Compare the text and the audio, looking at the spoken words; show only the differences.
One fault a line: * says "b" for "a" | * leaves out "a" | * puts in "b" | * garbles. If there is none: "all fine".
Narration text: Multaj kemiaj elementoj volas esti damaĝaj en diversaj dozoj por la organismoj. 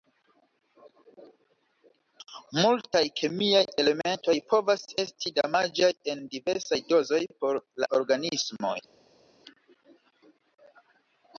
* says "povas" for "volas"